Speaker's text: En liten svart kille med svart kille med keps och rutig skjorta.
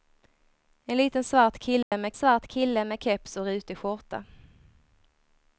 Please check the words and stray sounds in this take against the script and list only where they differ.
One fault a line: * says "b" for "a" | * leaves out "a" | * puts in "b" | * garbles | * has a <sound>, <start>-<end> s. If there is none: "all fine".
* has a dropout, 1.8-1.9 s